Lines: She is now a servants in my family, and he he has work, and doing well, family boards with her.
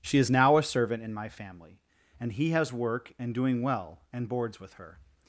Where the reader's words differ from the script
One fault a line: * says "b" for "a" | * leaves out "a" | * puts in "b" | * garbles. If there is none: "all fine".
* says "servant" for "servants"
* leaves out "he"
* says "and" for "family"